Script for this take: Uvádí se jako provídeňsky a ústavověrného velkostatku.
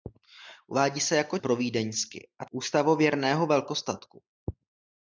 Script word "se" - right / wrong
right